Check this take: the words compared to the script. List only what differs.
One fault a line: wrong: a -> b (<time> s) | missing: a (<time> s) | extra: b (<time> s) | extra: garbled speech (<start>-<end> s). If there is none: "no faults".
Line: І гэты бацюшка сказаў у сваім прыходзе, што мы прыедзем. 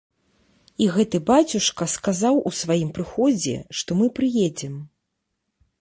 no faults